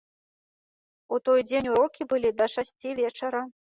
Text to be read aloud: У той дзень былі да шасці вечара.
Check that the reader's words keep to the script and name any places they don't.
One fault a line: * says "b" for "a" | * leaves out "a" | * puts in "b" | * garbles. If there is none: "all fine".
* puts in "урокі"